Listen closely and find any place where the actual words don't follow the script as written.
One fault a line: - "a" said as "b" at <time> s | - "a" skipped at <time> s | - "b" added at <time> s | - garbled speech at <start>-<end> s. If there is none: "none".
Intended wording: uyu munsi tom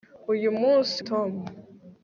none